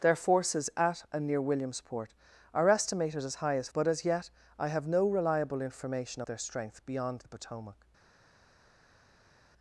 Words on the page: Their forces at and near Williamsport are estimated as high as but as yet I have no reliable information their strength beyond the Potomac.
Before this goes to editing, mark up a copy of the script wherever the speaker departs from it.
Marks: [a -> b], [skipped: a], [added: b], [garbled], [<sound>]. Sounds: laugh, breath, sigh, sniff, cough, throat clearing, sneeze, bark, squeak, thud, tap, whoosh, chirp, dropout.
Their forces at and near Williamsport are estimated as high as but as yet I have no reliable information their strength beyond the Potomac.